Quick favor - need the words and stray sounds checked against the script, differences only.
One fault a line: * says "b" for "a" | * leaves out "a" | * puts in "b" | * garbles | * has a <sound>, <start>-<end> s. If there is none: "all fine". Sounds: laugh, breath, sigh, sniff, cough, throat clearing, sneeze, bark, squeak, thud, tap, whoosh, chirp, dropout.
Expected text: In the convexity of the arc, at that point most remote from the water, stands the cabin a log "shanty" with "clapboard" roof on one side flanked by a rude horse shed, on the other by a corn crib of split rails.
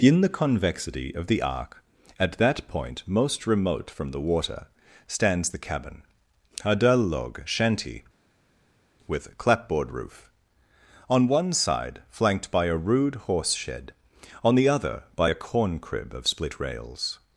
* puts in "dull"